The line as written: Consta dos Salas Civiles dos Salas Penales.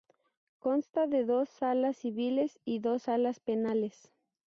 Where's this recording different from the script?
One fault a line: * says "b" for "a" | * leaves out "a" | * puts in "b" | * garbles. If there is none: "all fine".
* puts in "de"
* puts in "y"